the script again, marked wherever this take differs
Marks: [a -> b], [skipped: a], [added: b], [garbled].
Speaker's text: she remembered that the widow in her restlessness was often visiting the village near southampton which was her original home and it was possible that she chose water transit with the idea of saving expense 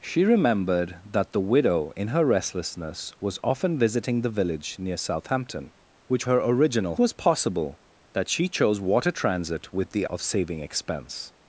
she remembered that the widow in her restlessness was often visiting the village near southampton which [skipped: was] her original [skipped: home and it] was possible that she chose water transit with the [skipped: idea] of saving expense